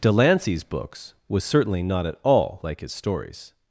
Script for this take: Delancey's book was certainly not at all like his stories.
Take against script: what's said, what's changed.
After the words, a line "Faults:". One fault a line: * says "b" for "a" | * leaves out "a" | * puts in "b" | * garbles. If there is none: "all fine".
Delancey's books was certainly not at all like his stories.
Faults:
* says "books" for "book"